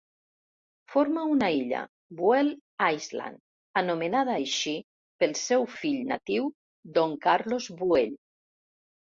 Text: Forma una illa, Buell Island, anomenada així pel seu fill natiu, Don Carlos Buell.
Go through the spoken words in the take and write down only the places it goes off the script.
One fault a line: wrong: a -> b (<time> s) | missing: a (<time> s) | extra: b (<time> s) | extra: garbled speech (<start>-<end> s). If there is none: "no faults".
no faults